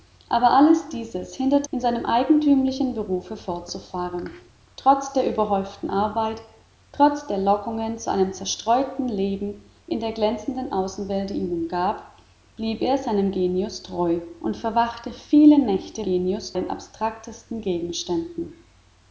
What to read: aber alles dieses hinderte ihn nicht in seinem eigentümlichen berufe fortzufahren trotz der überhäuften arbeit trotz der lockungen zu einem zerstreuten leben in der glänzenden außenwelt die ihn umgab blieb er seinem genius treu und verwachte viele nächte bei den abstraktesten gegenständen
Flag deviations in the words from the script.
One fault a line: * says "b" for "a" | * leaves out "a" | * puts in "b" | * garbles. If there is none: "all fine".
* leaves out "ihn nicht"
* says "genius" for "bei"